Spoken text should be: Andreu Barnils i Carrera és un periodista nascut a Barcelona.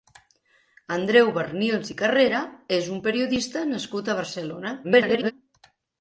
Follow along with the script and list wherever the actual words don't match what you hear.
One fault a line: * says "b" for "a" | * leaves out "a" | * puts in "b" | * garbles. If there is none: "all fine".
* garbles